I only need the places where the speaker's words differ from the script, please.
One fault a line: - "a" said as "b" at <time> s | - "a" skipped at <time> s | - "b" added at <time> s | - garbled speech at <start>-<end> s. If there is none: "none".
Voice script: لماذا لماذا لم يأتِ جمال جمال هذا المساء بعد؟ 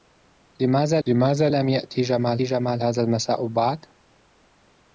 none